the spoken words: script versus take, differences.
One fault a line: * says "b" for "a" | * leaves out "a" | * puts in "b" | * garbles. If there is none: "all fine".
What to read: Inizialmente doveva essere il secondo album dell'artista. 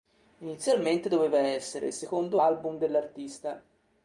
all fine